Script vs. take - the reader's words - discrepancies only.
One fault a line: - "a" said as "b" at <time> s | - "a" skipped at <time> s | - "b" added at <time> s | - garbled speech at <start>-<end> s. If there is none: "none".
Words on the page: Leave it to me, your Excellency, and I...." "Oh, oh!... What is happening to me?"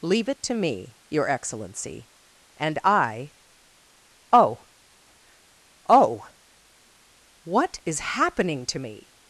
none